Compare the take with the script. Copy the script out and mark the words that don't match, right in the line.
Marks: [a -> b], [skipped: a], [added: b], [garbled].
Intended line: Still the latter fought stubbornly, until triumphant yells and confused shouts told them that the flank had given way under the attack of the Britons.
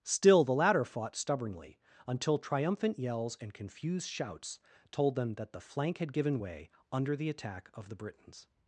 Still the latter fought stubbornly, until triumphant yells and confused shouts told them that the flank had given way under the attack of the Britons.